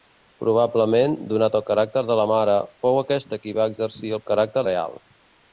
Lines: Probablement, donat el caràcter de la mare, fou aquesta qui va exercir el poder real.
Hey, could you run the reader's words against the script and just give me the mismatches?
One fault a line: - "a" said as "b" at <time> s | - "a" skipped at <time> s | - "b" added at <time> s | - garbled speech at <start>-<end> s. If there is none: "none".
- "poder" said as "caràcter" at 4.3 s